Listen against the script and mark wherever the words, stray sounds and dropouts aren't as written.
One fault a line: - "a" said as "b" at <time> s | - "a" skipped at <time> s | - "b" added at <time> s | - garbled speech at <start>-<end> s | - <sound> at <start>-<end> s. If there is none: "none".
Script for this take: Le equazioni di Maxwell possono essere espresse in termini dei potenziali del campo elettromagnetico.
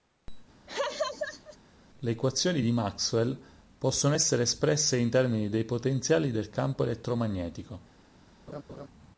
- laugh at 0.7-1.6 s
- laugh at 8.5-8.9 s